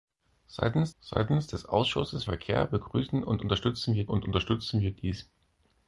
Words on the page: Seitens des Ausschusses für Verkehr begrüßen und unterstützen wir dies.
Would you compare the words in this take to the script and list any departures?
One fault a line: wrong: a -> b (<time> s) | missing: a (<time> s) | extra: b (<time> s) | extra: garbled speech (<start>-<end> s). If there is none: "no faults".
extra: seitens (1.0 s)
missing: für (2.2 s)
extra: und unterstützen wir (4.1 s)